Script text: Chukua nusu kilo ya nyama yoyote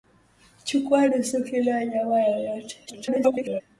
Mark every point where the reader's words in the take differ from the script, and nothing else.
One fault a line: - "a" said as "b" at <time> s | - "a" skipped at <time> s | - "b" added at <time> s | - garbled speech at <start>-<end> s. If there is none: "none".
- garbled speech at 2.9-3.6 s